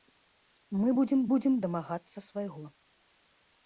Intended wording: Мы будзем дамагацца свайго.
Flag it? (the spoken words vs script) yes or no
yes